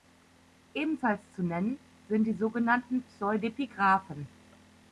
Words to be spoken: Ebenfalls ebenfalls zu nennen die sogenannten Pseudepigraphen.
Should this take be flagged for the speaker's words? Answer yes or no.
yes